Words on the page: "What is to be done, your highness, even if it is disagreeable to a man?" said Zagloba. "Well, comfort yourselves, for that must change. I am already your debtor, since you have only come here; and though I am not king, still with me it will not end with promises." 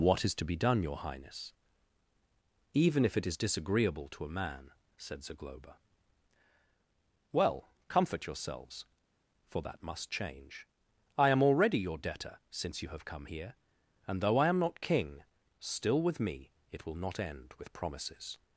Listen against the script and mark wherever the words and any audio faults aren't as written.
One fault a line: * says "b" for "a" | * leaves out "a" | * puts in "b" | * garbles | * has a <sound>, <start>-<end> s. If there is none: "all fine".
* leaves out "only"